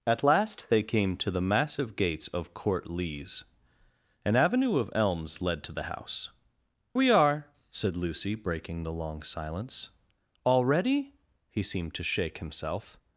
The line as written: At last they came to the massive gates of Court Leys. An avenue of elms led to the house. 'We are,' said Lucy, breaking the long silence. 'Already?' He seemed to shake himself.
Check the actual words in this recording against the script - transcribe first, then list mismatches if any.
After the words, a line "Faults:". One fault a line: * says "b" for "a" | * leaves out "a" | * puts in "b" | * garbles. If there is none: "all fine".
At last they came to the massive gates of Court Leys. An avenue of elms led to the house. 'We are,' said Lucy, breaking the long silence. 'Already?' He seemed to shake himself.
Faults:
all fine